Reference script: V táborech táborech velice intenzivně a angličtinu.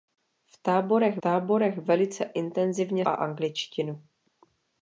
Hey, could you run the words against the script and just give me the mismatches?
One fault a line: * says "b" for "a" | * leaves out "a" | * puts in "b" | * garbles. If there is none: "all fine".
all fine